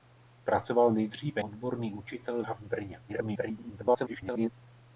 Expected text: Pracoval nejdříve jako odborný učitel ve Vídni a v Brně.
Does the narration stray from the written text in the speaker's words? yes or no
yes